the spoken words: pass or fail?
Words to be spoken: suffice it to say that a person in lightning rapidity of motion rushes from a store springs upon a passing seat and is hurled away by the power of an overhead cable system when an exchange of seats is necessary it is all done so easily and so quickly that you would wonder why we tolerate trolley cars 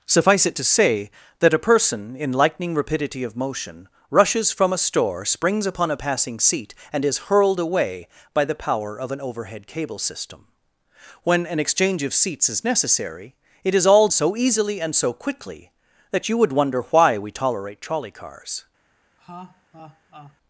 fail